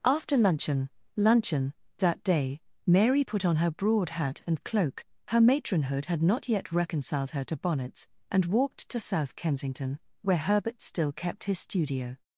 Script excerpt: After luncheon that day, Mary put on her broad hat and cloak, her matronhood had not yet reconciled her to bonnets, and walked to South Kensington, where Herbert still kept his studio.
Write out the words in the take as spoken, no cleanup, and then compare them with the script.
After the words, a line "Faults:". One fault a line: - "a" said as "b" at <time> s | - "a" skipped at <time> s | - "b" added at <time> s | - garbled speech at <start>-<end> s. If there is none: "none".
After luncheon luncheon that day, Mary put on her broad hat and cloak, her matronhood had not yet reconciled her to bonnets, and walked to South Kensington, where Herbert still kept his studio.
Faults:
- "luncheon" added at 1.1 s